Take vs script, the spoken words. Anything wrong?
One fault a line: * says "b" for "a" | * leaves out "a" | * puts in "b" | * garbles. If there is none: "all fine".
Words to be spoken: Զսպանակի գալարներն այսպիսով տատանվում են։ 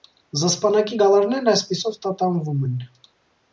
all fine